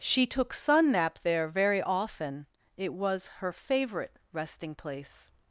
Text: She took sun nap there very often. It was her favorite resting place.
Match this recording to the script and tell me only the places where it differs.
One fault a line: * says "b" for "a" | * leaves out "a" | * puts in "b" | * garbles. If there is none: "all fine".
all fine